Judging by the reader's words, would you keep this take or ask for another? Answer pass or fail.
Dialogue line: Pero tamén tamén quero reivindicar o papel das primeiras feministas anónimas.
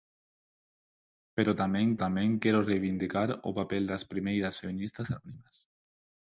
pass